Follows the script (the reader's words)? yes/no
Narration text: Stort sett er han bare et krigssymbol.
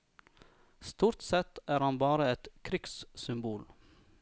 yes